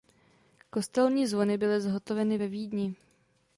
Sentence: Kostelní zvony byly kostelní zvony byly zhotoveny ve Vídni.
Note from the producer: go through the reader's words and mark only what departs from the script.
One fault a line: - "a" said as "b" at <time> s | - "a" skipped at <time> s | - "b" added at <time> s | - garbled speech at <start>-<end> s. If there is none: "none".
- "kostelní zvony byly" skipped at 1.8 s